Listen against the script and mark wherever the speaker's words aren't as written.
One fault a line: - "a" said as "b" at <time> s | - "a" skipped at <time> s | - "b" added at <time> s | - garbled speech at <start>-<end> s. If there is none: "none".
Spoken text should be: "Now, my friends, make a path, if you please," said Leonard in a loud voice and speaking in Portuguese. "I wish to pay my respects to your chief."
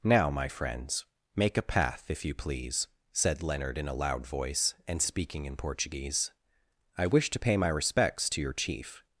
none